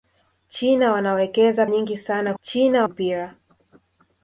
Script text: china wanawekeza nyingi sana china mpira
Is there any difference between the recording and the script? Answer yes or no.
no